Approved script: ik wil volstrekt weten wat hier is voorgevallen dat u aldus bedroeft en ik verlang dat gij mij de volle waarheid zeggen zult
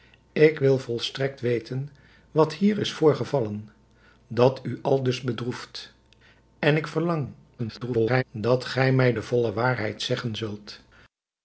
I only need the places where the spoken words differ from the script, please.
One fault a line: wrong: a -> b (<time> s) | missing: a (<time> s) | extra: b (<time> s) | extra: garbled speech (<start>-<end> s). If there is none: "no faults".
extra: garbled speech (7.6-8.2 s)